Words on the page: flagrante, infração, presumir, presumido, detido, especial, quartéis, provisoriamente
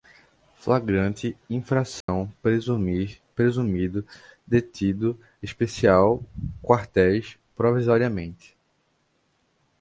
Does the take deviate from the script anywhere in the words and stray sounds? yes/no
yes